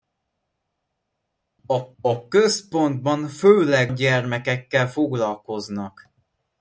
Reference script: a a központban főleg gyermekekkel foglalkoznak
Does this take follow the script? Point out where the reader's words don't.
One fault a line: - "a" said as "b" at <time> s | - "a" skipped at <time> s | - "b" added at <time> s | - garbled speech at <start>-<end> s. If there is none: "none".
none